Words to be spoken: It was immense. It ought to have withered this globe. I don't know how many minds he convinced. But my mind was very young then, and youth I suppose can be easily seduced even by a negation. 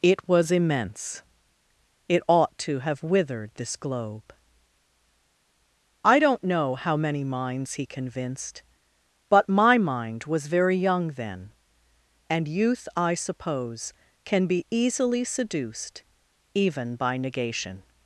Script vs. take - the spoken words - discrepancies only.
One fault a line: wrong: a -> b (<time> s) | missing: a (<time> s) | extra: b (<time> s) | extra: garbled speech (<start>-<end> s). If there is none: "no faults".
missing: a (17.1 s)